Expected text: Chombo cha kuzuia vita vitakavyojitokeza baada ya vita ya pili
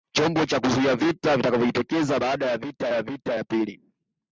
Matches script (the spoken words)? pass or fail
fail